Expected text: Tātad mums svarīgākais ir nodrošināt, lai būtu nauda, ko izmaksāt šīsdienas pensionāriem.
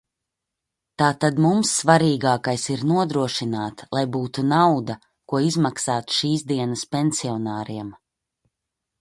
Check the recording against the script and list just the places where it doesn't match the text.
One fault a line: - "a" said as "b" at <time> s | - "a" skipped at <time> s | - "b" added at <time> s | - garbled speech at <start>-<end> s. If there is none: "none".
none